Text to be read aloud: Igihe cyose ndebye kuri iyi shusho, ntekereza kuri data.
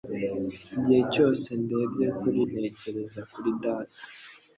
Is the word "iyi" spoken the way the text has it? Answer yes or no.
no